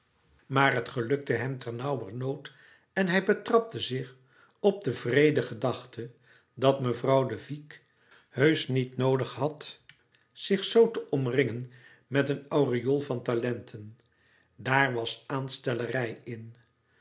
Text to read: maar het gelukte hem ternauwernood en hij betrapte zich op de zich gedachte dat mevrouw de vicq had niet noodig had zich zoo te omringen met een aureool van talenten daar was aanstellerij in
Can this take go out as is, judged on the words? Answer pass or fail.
fail